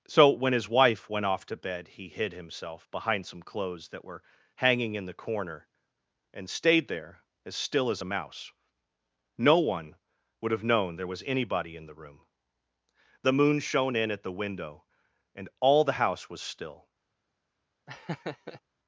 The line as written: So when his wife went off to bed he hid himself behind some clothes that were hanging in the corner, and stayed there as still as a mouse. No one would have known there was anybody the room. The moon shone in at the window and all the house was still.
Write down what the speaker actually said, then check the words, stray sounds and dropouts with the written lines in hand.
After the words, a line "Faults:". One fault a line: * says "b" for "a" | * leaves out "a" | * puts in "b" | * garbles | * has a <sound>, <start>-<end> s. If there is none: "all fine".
So when his wife went off to bed he hid himself behind some clothes that were hanging in the corner, and stayed there as still as a mouse. No one would have known there was anybody in the room. The moon shone in at the window and all the house was still.
Faults:
* puts in "in"
* has a laugh, 17.9-18.6 s